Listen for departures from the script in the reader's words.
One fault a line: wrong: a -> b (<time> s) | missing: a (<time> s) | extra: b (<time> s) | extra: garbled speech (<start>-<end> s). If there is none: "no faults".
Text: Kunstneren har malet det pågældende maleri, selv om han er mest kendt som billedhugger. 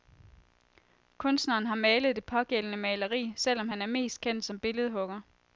no faults